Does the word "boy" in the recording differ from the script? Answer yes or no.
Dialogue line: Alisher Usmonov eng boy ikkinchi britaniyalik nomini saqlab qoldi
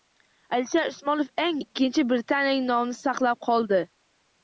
yes